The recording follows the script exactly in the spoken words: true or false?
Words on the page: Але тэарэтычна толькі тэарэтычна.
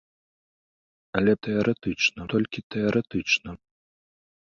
true